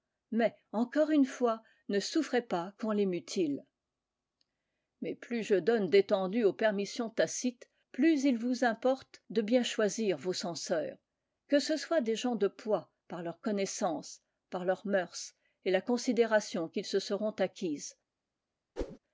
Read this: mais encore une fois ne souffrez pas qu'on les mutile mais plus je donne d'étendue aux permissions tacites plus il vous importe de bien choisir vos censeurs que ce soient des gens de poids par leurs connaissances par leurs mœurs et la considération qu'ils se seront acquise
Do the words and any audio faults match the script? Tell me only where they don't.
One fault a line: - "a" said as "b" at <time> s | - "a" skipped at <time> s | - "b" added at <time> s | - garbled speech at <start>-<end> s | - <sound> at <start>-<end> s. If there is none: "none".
- whoosh at 18.8-19.0 s